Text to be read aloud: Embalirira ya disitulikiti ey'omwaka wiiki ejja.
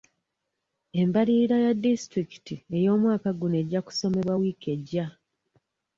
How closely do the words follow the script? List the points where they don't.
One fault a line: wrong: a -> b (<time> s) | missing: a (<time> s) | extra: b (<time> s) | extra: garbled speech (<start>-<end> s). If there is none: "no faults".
extra: guno ejja kusomebwa (3.4 s)